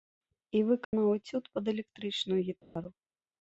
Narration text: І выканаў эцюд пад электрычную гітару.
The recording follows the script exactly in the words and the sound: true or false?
false